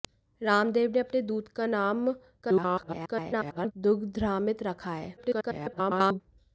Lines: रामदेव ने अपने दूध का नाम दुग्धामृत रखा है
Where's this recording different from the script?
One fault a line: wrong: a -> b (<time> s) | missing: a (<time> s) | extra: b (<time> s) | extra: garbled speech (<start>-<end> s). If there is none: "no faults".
extra: garbled speech (2.4-3.7 s)
extra: garbled speech (5.2-6.2 s)